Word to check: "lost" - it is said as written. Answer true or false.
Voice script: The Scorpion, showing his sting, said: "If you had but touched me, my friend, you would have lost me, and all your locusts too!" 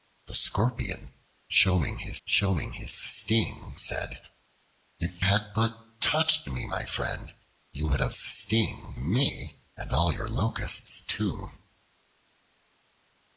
false